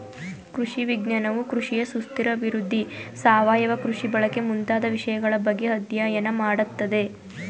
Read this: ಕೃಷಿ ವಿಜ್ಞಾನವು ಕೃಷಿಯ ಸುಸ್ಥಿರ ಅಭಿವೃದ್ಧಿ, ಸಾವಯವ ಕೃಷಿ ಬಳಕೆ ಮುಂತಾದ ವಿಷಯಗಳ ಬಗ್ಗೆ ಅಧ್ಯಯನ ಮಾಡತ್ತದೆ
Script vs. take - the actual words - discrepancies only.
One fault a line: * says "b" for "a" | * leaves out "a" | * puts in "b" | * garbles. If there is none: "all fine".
all fine